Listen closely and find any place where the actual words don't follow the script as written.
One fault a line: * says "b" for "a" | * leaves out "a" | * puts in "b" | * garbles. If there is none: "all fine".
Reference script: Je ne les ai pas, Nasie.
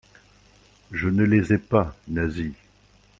all fine